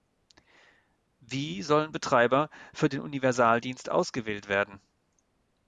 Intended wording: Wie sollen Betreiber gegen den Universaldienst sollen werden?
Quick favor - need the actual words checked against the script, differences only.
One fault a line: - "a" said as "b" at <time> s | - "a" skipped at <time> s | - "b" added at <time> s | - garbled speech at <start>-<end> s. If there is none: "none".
- "gegen" said as "für" at 2.7 s
- "sollen" said as "ausgewählt" at 3.9 s